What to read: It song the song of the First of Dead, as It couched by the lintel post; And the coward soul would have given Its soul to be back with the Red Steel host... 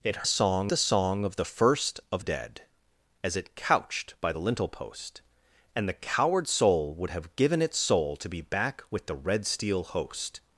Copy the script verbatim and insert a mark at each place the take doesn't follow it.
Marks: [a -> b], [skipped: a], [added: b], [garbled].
It song the song of the First of Dead, as It couched by the lintel post; And the coward soul would have given Its soul to be back with the Red Steel host...